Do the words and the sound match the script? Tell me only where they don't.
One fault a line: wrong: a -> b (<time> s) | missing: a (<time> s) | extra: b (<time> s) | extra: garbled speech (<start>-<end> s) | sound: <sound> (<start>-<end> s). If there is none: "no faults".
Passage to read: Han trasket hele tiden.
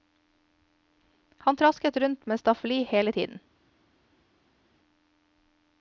extra: rundt med staffeli (2.0 s)